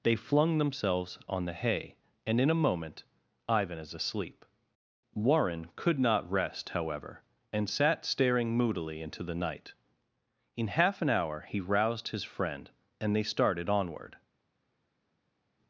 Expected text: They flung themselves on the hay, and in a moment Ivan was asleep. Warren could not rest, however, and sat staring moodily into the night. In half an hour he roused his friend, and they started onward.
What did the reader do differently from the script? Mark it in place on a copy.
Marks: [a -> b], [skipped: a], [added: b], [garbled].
They flung themselves on the hay, and in a moment Ivan [was -> is] asleep. Warren could not rest, however, and sat staring moodily into the night. In half an hour he roused his friend, and they started onward.